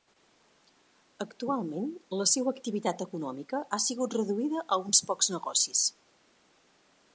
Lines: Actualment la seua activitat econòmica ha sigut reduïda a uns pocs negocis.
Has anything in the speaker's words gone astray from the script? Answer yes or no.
no